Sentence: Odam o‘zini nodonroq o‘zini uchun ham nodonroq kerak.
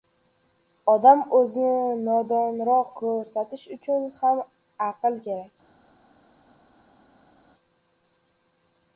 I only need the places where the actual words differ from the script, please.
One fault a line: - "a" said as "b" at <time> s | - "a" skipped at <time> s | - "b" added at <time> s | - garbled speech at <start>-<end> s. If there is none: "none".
- "o‘zini" said as "ko‘rsatish" at 3.0 s
- "nodonroq" said as "aql" at 4.9 s